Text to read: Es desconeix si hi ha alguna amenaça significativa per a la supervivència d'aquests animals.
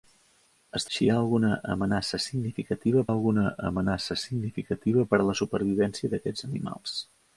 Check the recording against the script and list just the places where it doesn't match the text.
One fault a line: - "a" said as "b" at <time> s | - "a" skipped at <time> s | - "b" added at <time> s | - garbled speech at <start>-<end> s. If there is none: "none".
- "desconeix" skipped at 0.9 s
- "alguna amenaça significativa" added at 3.1 s